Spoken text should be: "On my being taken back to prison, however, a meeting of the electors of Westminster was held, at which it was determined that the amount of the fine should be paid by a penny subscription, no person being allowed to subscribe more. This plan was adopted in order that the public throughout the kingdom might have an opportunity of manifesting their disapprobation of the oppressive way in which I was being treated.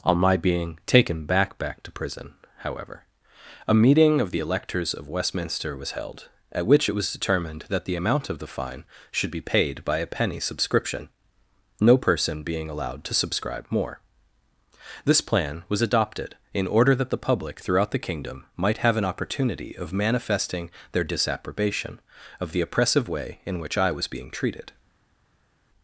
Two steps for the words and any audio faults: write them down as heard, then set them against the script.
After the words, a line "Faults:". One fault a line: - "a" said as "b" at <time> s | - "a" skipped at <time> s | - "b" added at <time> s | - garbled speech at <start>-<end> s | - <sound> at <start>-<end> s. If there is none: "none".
"On my being taken back back to prison, however, a meeting of the electors of Westminster was held, at which it was determined that the amount of the fine should be paid by a penny subscription, no person being allowed to subscribe more. This plan was adopted in order that the public throughout the kingdom might have an opportunity of manifesting their disapprobation of the oppressive way in which I was being treated.
Faults:
- "back" added at 1.6 s